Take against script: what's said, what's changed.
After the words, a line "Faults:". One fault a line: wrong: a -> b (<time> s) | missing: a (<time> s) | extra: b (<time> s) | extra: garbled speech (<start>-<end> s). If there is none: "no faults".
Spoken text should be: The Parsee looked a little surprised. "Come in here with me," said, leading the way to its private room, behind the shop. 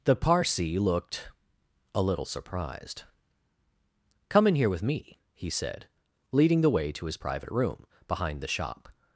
The Parsee looked a little surprised. "Come in here with me," he said, leading the way to his private room, behind the shop.
Faults:
extra: he (5.3 s)
wrong: its -> his (7.1 s)